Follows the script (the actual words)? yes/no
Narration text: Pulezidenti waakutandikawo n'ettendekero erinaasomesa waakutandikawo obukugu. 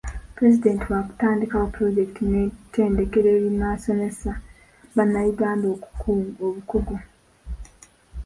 no